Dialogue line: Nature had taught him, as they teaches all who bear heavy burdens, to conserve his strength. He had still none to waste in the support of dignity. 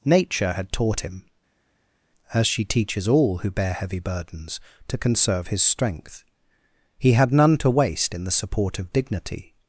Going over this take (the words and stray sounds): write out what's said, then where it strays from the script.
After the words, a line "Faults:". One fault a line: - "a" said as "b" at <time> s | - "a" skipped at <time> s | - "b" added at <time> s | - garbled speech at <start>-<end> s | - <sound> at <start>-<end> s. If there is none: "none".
Nature had taught him, as she teaches all who bear heavy burdens, to conserve his strength. He had none to waste in the support of dignity.
Faults:
- "they" said as "she" at 2.5 s
- "still" skipped at 7.3 s